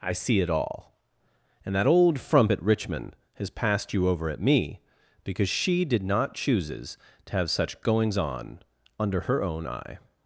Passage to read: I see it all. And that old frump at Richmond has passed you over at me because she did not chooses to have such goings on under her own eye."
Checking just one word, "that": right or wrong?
right